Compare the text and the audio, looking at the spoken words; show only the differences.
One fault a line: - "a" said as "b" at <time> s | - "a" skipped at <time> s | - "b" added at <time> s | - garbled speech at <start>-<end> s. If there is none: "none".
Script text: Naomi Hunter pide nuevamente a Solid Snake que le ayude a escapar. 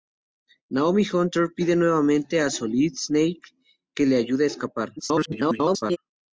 - garbled speech at 5.0-6.0 s